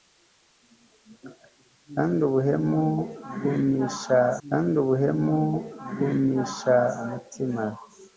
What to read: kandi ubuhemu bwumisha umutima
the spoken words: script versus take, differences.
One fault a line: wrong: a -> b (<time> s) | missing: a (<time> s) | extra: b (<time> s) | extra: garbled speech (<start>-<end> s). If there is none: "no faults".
extra: kandi ubuhemu bwumisha (4.5 s)